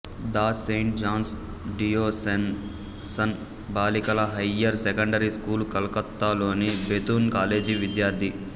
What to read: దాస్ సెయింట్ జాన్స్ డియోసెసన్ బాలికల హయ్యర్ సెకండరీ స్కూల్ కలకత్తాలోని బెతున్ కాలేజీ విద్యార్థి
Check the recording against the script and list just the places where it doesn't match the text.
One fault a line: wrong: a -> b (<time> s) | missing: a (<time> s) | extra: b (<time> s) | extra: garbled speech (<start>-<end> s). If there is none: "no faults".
no faults